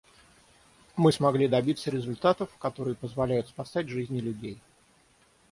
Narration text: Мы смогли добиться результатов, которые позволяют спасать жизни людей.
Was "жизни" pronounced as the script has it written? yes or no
yes